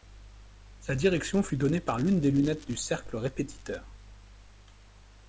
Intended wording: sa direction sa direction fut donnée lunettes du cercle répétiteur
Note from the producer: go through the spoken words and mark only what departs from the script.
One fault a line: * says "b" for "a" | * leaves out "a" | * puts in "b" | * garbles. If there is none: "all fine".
* says "fut donnée par l'une des" for "sa direction fut donnée"